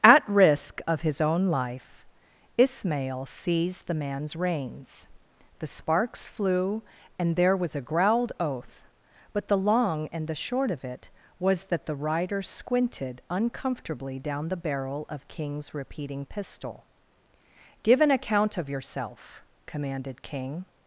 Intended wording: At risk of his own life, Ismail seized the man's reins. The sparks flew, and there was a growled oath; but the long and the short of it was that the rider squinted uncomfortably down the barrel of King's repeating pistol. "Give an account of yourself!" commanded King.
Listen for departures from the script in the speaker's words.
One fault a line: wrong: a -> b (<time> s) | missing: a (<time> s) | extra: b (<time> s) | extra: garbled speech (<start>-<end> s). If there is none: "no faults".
no faults